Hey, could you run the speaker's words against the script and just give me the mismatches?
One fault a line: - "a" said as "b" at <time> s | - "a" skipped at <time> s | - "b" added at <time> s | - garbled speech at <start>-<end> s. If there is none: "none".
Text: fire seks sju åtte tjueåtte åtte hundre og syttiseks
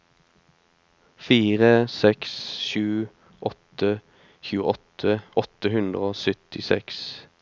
none